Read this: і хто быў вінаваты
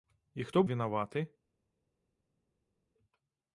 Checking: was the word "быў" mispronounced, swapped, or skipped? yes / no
yes